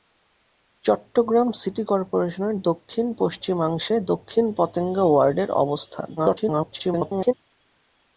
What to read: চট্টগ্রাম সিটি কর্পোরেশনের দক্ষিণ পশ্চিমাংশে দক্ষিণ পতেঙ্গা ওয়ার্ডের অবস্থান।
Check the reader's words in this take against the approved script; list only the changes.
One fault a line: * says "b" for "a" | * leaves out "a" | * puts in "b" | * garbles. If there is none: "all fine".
* garbles